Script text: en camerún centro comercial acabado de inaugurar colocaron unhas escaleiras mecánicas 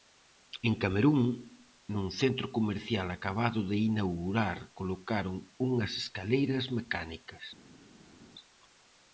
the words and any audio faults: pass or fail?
fail